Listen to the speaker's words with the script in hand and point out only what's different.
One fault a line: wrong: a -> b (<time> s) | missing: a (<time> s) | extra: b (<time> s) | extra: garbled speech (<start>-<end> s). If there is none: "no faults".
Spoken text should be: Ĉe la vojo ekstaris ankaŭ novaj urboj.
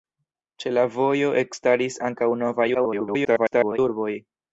extra: garbled speech (2.7-3.8 s)